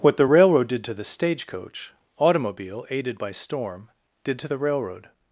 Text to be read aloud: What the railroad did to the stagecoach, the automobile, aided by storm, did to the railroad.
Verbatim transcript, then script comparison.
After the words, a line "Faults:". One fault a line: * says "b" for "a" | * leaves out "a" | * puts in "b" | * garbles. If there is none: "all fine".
What the railroad did to the stagecoach, automobile, aided by storm, did to the railroad.
Faults:
* leaves out "the"